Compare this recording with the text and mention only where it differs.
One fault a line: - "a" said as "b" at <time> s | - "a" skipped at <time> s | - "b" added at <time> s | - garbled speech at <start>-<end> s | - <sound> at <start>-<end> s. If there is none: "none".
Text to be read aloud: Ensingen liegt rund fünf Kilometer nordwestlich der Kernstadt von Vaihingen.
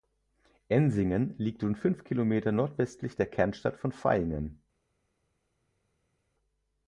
none